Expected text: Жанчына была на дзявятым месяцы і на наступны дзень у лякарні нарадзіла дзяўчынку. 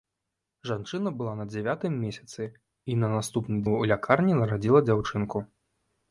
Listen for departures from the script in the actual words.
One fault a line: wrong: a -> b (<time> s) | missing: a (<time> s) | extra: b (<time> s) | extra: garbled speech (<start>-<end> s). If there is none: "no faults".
missing: дзень (3.6 s)